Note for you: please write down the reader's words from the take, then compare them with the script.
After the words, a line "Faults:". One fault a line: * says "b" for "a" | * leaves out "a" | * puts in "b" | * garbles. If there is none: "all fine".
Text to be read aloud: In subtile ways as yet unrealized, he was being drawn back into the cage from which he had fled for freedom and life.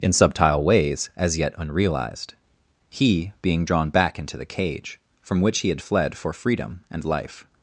In subtile ways as yet unrealized, he being drawn back into the cage from which he had fled for freedom and life.
Faults:
* leaves out "was"